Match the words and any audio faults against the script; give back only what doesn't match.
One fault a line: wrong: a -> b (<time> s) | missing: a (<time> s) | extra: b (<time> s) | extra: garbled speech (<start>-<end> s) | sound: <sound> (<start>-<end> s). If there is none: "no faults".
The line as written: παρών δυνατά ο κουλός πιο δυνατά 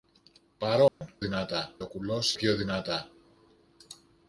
sound: dropout (0.9-1.0 s)